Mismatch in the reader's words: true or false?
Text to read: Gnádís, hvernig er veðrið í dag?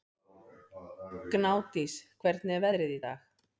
false